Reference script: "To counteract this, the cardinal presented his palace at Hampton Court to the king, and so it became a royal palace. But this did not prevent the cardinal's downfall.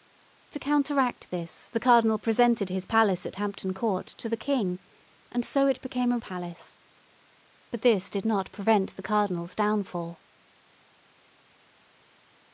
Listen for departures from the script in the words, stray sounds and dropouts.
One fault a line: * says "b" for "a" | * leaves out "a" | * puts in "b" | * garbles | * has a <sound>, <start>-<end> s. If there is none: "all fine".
* leaves out "royal"